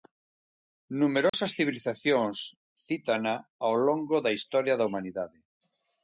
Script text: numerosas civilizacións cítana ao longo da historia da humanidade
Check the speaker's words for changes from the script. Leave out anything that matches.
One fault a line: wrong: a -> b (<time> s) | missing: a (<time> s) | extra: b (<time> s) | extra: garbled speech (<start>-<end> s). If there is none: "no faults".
no faults